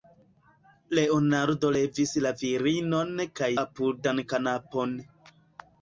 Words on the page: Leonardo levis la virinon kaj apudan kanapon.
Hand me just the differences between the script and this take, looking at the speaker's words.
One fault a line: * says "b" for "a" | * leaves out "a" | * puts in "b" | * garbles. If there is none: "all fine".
all fine